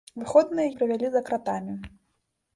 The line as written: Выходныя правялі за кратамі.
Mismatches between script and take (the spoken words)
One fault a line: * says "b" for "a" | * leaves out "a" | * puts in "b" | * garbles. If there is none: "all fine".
all fine